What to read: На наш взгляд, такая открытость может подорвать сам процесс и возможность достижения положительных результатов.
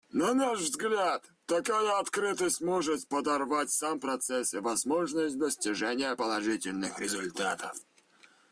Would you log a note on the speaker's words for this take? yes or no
no